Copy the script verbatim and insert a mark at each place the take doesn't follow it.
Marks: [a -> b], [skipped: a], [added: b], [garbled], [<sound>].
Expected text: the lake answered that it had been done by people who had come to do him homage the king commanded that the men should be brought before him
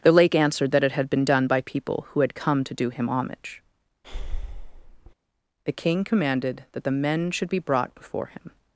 the lake answered that it had been done by people who had come to do him homage [breath] the king commanded that the men should be brought before him